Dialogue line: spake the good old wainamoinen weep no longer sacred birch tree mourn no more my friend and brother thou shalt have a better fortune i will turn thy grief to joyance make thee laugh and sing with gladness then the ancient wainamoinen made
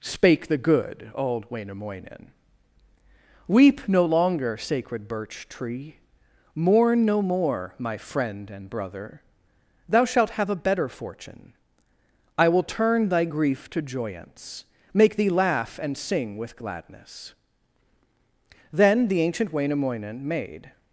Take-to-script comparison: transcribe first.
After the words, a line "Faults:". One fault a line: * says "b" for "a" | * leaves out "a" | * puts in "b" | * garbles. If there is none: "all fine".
spake the good old wainamoinen weep no longer sacred birch tree mourn no more my friend and brother thou shalt have a better fortune i will turn thy grief to joyance make thee laugh and sing with gladness then the ancient wainamoinen made
Faults:
all fine